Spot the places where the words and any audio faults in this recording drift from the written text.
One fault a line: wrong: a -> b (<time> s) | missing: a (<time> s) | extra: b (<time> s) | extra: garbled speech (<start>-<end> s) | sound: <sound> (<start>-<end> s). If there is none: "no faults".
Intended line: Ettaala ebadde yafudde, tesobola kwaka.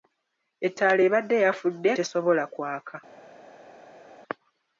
no faults